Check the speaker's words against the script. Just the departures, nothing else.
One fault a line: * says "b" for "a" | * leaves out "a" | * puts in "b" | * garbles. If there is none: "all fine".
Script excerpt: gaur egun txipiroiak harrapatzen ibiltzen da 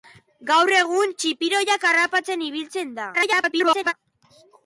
* garbles